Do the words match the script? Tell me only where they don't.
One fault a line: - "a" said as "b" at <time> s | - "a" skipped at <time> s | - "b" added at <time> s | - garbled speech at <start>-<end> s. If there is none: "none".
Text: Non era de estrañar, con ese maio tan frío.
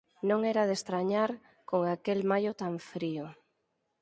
- "ese" said as "aquel" at 1.9 s